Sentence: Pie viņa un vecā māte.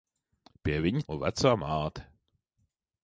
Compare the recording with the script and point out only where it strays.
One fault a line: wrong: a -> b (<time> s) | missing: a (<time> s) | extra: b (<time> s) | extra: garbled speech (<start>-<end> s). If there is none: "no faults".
no faults